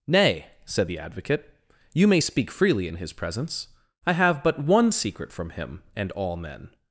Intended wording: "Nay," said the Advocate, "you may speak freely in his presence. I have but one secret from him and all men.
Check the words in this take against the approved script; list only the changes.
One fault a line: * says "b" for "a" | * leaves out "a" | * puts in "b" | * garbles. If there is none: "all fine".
all fine